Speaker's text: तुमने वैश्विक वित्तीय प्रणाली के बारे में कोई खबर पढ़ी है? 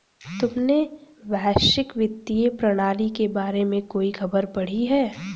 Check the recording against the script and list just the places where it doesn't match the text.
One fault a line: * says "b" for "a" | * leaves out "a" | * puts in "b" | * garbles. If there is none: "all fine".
all fine